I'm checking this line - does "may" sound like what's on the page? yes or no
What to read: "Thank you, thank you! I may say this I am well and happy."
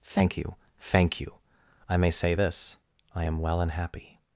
yes